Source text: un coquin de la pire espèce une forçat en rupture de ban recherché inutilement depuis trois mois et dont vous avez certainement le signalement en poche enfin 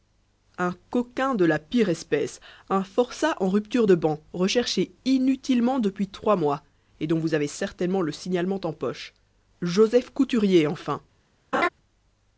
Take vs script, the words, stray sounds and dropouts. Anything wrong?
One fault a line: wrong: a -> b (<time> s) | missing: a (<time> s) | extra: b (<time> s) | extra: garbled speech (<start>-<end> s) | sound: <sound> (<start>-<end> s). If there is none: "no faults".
wrong: une -> un (2.7 s)
extra: joseph couturier (9.6 s)
sound: laugh (11.5-11.7 s)